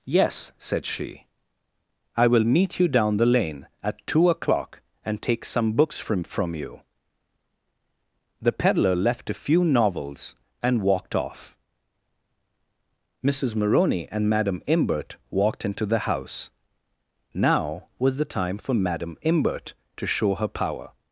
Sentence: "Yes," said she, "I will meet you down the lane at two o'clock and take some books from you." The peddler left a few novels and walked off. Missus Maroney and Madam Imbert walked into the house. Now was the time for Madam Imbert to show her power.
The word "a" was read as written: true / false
true